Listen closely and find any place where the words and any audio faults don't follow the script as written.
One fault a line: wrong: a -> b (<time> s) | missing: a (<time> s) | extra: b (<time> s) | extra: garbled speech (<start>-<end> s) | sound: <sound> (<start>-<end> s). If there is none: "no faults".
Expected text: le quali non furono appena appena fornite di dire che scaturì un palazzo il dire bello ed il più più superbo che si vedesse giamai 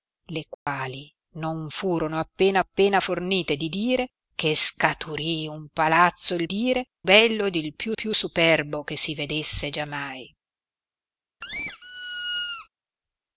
sound: dropout (0.5-0.7 s)
sound: squeak (11.4-12.7 s)